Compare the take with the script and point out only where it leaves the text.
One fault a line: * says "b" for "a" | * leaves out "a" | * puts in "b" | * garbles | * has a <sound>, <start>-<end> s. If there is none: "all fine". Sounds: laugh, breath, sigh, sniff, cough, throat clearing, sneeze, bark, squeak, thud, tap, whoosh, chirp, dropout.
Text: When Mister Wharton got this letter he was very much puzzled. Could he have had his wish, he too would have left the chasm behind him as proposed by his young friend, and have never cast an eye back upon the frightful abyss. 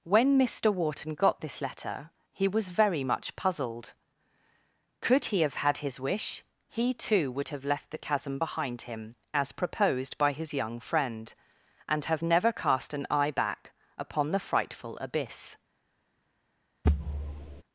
* has a thud, 16.8-17.6 s